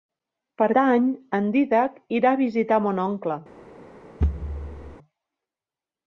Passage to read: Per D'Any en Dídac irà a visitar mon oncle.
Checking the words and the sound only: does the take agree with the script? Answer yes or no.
no